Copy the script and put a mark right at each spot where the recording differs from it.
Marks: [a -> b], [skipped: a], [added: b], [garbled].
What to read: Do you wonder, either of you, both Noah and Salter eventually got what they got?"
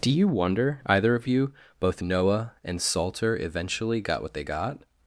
Do you wonder, either of you, both Noah and Salter eventually got what they got?"